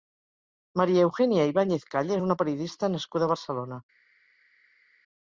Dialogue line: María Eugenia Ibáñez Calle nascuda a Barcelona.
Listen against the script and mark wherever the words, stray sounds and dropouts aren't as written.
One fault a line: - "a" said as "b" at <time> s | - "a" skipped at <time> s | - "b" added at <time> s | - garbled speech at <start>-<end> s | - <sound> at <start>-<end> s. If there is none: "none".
- "és una periodista" added at 2.1 s